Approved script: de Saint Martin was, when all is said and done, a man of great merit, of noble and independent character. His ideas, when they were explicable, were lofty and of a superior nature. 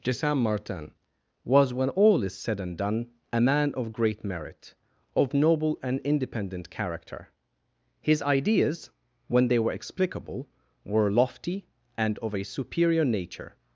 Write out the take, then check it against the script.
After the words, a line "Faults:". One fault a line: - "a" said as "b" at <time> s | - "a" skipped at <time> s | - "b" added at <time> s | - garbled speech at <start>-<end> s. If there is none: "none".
de Saint Martin was, when all is said and done, a man of great merit, of noble and independent character. His ideas, when they were explicable, were lofty and of a superior nature.
Faults:
none